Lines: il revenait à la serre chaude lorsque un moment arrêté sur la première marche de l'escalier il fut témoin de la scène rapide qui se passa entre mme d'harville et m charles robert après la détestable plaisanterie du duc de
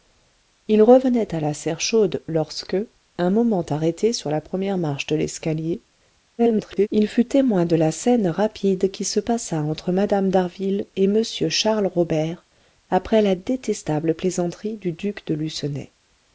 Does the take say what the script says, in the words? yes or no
no